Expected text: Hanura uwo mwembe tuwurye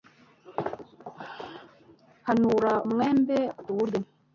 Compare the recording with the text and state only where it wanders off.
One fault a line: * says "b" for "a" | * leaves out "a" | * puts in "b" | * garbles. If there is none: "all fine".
* leaves out "uwo"